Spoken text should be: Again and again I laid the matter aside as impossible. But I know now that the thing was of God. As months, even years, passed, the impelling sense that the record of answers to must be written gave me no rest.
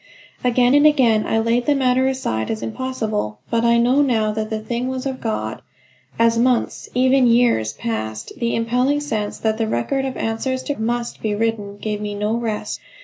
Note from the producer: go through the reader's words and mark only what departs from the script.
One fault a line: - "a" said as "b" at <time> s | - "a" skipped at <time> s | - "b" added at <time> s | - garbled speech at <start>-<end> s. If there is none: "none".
none